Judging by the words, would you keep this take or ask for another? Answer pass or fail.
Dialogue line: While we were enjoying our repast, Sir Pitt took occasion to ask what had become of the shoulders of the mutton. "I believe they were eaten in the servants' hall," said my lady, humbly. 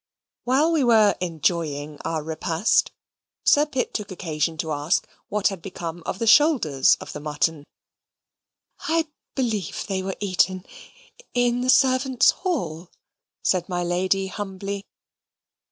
pass